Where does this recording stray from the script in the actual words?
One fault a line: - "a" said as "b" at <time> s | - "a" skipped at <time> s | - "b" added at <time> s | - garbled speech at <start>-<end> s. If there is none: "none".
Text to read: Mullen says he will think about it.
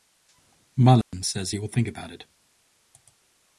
none